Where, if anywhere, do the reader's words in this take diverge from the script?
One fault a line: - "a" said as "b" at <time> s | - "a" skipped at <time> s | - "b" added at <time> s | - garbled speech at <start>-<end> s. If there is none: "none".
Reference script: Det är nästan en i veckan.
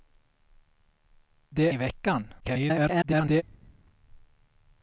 - "är nästan en" skipped at 1.7 s
- garbled speech at 2.4-3.4 s